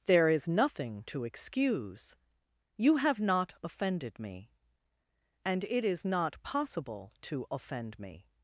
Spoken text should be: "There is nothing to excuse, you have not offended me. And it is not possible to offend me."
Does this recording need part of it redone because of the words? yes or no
no